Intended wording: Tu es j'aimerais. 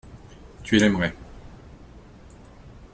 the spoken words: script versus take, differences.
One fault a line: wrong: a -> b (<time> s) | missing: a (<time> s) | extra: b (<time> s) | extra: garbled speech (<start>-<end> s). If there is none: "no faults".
no faults